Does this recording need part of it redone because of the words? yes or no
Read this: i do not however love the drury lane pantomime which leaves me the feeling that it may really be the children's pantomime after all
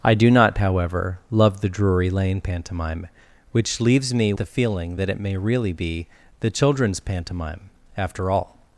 no